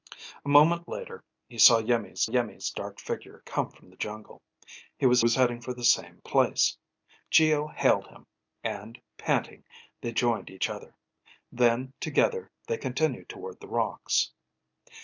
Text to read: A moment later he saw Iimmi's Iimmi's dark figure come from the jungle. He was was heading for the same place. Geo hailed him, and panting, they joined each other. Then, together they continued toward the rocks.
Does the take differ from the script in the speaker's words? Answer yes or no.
no